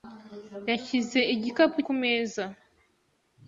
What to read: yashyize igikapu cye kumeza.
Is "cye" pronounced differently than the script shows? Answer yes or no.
yes